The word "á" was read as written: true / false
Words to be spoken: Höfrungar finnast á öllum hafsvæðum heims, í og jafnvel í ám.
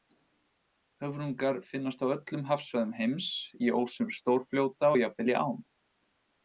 true